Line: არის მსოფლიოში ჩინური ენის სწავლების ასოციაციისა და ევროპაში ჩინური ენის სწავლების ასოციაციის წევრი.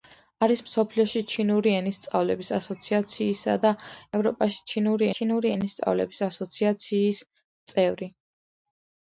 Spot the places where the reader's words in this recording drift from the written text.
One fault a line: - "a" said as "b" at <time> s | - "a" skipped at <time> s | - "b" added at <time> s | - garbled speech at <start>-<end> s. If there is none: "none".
- "ჩინური" added at 5.2 s